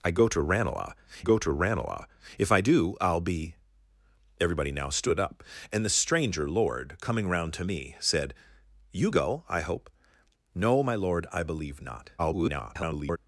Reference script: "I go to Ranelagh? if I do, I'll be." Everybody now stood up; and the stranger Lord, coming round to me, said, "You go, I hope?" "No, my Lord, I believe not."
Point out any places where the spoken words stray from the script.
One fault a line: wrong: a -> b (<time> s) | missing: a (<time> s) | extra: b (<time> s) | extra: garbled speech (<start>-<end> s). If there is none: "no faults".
extra: go to Ranelagh (1.2 s)
extra: garbled speech (12.2-13.2 s)